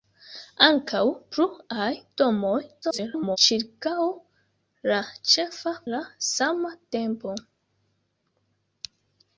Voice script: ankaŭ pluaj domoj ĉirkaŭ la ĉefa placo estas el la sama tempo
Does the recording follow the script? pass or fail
fail